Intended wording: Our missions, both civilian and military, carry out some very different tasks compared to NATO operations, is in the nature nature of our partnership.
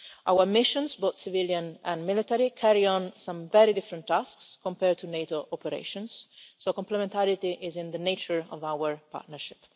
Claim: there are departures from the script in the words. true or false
true